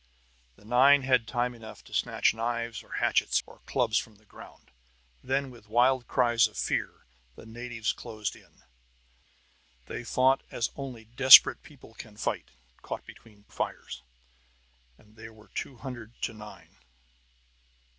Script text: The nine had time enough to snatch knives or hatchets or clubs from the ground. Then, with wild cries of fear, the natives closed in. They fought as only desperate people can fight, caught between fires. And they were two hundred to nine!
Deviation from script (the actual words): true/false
false